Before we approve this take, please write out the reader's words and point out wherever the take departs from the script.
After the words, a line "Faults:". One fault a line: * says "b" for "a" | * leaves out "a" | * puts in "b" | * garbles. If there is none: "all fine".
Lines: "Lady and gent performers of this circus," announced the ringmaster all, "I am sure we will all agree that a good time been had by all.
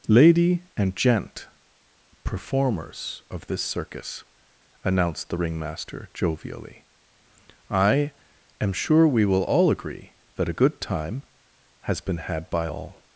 "Lady and gent performers of this circus," announced the ringmaster jovially, "I am sure we will all agree that a good time has been had by all.
Faults:
* says "jovially" for "all"
* puts in "has"